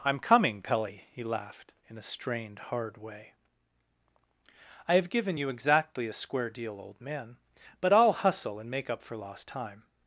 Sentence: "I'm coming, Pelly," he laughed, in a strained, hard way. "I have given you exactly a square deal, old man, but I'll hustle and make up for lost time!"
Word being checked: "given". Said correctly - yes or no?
yes